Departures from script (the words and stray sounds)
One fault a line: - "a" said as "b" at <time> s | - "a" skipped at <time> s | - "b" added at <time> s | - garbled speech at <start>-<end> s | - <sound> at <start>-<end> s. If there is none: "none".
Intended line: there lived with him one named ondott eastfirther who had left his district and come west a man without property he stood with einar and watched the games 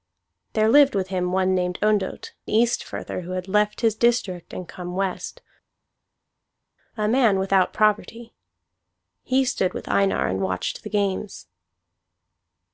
none